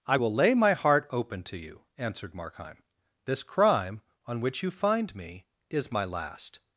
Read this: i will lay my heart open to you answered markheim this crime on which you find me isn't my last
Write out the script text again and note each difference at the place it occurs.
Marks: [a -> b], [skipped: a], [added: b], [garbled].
i will lay my heart open to you answered markheim this crime on which you find me [isn't -> is] my last